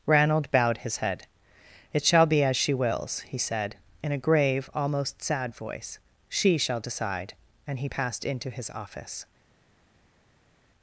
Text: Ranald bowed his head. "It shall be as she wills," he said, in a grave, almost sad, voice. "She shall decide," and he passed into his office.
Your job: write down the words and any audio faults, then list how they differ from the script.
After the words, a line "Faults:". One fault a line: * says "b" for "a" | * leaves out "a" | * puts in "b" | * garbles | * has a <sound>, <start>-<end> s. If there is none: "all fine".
Ranald bowed his head. "It shall be as she wills," he said, in a grave, almost sad, voice. "She shall decide," and he passed into his office.
Faults:
all fine